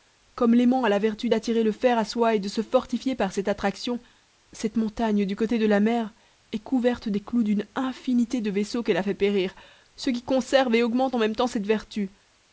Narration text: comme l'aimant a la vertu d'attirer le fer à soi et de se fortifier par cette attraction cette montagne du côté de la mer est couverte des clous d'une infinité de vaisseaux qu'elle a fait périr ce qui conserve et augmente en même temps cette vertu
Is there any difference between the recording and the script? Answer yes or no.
no